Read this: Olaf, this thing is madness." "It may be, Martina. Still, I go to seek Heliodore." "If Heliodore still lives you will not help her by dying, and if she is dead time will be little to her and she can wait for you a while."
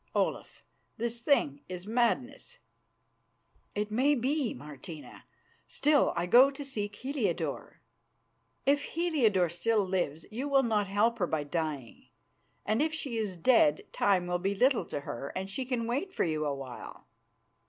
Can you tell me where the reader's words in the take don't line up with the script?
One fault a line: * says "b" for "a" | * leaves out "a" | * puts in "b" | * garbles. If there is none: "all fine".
all fine